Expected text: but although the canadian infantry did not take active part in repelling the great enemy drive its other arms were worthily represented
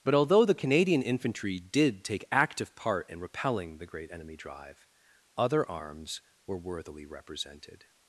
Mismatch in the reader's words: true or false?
true